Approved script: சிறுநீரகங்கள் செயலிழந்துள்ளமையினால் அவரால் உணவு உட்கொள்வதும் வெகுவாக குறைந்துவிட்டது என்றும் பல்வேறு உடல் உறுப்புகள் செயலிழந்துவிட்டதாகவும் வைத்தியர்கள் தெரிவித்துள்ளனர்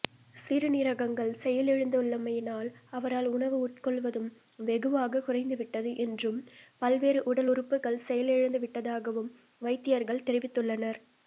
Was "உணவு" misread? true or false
false